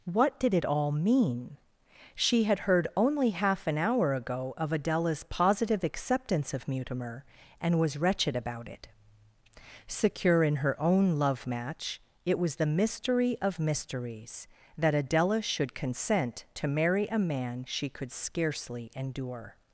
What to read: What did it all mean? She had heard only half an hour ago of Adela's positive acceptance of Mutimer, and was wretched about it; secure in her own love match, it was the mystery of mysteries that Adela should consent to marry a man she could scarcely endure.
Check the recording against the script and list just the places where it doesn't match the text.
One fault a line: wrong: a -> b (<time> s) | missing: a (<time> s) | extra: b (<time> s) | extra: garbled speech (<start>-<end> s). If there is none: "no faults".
no faults